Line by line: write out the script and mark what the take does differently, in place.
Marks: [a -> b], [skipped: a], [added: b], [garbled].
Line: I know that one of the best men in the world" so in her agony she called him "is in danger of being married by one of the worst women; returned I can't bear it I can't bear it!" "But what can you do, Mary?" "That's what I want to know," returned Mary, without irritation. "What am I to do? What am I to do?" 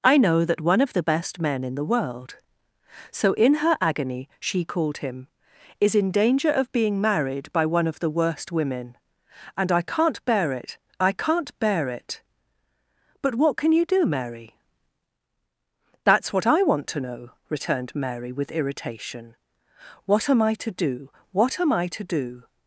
I know that one of the best men in the world" so in her agony she called him "is in danger of being married by one of the worst women; [returned -> and] I can't bear it I can't bear it!" "But what can you do, Mary?" "That's what I want to know," returned Mary, [without -> with] irritation. "What am I to do? What am I to do?"